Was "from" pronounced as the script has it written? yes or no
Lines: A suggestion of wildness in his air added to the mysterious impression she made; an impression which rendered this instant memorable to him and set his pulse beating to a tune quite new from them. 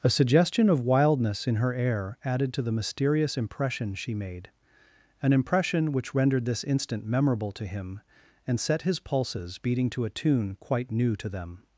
no